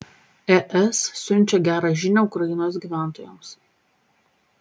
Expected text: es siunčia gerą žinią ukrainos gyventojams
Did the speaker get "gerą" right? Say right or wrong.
right